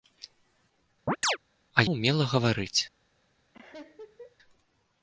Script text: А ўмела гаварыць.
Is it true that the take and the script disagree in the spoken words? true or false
false